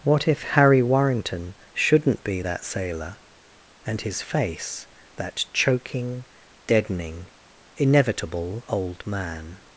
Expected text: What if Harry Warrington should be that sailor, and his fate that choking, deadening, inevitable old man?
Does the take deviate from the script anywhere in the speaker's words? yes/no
yes